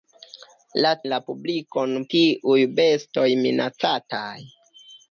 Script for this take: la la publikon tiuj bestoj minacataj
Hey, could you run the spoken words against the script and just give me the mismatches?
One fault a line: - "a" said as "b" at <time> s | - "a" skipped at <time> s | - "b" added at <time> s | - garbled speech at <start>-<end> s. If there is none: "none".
none